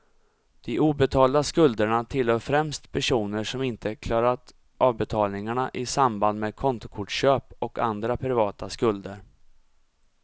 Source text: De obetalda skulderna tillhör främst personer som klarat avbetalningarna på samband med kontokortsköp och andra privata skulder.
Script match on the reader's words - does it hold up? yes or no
no